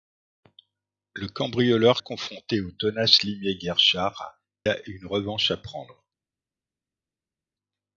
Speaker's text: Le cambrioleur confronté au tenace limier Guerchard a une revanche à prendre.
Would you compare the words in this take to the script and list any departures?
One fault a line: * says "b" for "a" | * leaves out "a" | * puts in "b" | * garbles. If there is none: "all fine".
all fine